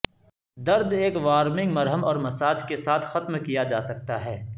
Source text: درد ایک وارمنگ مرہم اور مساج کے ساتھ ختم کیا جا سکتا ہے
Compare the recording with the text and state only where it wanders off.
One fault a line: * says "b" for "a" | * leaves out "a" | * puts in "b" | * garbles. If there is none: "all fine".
all fine